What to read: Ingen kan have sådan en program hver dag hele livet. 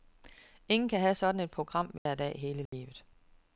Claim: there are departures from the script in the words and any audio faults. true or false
true